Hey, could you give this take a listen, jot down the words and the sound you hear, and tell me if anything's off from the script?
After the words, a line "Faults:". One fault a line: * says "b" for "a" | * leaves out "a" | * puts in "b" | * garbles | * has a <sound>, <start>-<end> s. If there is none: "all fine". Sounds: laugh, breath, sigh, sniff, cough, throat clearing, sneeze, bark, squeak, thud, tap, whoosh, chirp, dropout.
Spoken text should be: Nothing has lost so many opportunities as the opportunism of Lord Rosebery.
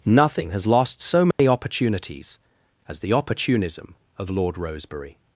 Nothing has lost so many opportunities as the opportunism of Lord Rosebery.
Faults:
* has a dropout, 1.3-1.4 s